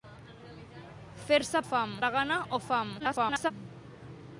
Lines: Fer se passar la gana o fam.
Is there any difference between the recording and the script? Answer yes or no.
yes